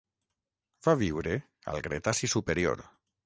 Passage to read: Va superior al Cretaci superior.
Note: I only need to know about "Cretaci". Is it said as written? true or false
true